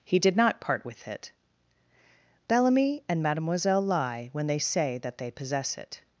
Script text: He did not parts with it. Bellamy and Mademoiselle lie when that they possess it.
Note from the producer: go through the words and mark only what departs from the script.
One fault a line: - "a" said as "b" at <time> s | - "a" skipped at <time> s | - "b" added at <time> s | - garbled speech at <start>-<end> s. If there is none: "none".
- "parts" said as "part" at 0.6 s
- "they say" added at 4.5 s